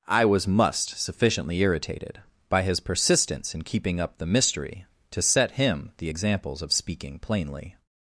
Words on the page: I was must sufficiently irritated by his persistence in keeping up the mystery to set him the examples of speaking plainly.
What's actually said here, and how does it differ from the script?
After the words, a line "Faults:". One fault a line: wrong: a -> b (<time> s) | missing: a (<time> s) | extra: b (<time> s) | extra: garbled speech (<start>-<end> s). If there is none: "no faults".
I was must sufficiently irritated by his persistence in keeping up the mystery to set him the examples of speaking plainly.
Faults:
no faults